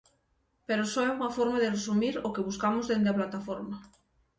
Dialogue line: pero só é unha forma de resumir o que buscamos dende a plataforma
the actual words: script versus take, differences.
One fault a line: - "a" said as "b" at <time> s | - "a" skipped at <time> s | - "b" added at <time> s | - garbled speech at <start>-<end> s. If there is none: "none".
none